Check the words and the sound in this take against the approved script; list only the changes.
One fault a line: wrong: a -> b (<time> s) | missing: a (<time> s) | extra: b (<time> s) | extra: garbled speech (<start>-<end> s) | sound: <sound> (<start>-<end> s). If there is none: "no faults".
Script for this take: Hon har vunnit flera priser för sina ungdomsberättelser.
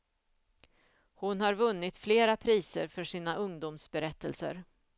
no faults